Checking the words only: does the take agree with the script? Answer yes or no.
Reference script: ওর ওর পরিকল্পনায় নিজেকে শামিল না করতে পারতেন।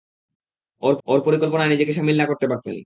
yes